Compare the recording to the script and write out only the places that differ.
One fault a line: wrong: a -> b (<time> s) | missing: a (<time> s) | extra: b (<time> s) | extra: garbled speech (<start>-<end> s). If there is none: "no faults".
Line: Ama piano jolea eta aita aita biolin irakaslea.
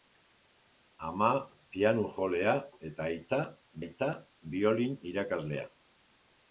no faults